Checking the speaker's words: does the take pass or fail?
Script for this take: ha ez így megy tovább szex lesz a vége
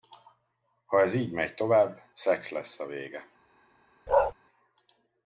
pass